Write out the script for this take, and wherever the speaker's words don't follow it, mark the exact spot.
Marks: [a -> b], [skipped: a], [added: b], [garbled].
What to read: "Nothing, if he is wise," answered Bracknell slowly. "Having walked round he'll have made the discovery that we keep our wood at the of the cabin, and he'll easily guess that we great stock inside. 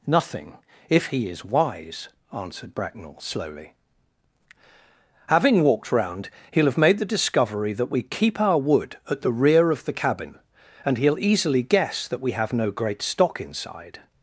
"Nothing, if he is wise," answered Bracknell slowly. "Having walked round he'll have made the discovery that we keep our wood at the [added: rear] of the cabin, and he'll easily guess that we [added: have no] great stock inside.